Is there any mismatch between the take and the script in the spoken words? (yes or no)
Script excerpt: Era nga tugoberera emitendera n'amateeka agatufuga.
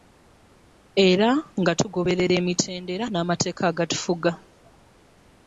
no